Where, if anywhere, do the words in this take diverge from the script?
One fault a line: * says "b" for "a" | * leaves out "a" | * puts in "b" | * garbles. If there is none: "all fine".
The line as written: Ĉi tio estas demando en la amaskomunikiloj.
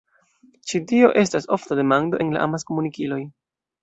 * puts in "ofta"